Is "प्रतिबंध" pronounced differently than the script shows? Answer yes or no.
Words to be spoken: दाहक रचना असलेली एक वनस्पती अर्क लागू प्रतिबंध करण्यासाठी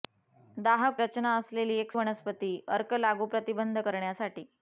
no